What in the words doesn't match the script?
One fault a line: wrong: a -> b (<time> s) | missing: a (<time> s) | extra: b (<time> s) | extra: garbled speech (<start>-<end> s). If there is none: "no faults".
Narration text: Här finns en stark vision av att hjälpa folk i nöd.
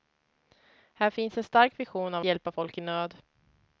missing: att (2.2 s)